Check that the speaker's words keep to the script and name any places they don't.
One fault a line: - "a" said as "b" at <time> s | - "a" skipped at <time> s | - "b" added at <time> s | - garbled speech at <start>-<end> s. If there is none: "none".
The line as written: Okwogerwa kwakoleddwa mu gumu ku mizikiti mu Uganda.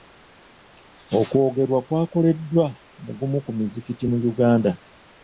none